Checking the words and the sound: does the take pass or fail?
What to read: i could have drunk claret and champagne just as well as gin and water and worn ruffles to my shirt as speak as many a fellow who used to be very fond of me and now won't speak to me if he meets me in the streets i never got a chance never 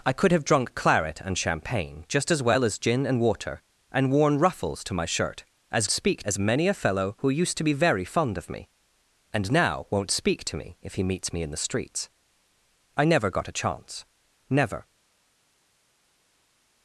pass